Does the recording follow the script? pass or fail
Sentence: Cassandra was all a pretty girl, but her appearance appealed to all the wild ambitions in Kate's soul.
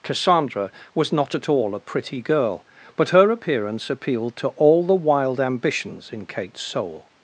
fail